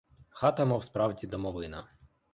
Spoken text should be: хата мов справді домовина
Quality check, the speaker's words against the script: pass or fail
pass